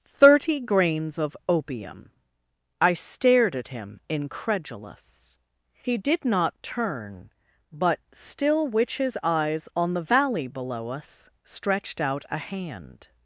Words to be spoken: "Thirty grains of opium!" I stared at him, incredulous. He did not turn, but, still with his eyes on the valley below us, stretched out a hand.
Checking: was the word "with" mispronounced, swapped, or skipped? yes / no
yes